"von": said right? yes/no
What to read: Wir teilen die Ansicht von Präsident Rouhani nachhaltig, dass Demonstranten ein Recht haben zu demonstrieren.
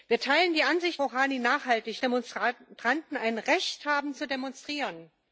no